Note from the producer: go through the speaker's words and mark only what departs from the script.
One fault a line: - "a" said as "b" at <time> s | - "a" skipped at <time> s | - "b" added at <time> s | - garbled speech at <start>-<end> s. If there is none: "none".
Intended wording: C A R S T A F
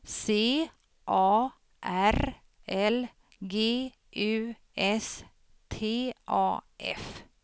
- "L G U" added at 2.7 s